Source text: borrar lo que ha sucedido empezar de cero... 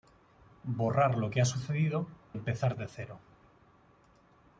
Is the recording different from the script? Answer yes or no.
no